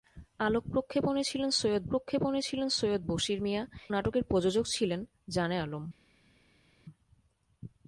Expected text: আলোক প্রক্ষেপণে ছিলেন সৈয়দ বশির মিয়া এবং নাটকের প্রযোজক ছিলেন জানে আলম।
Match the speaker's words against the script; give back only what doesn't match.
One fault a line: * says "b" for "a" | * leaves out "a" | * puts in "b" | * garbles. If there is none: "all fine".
* puts in "প্রক্ষেপণে ছিলেন সৈয়দ"
* leaves out "এবং"